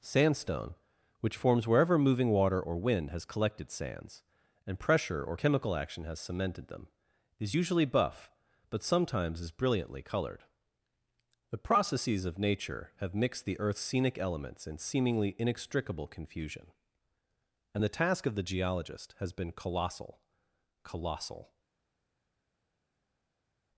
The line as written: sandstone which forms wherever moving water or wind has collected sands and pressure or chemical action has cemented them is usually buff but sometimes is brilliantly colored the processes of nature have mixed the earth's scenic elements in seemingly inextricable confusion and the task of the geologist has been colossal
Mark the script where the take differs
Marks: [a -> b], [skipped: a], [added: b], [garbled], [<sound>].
sandstone which forms wherever moving water or wind has collected sands and pressure or chemical action has cemented them is usually buff but sometimes is brilliantly colored the processes of nature have mixed the earth's scenic elements in seemingly inextricable confusion and the task of the geologist has been colossal [added: colossal]